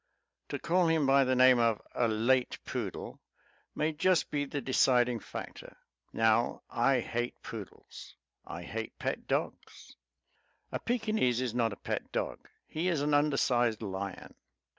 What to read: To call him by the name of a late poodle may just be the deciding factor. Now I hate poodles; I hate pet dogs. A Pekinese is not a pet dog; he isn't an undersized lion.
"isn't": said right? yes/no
no